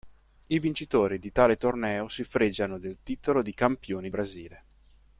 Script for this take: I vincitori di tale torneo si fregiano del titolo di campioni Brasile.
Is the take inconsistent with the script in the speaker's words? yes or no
no